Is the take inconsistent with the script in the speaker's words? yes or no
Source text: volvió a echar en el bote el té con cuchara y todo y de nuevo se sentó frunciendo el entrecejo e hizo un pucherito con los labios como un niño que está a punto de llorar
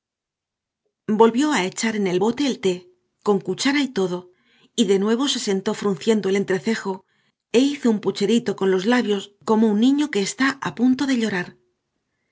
no